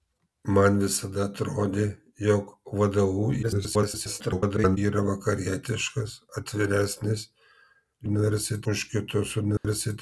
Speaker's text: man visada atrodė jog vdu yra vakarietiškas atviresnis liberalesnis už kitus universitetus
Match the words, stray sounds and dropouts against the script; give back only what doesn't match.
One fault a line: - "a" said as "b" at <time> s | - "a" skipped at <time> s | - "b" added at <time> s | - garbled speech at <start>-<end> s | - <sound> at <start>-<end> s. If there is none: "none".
- garbled speech at 3.4-4.8 s
- "liberalesnis" said as "universitetus" at 8.1 s
- dropout at 9.6-9.6 s